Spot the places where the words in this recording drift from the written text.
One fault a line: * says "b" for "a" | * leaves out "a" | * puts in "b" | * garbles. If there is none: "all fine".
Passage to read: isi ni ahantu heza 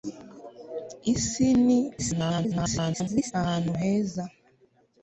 * garbles